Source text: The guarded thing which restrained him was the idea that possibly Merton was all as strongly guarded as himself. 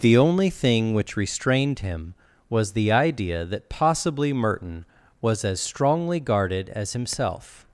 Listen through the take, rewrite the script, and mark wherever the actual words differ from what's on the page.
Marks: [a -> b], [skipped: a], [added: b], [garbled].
The [guarded -> only] thing which restrained him was the idea that possibly Merton was [skipped: all] as strongly guarded as himself.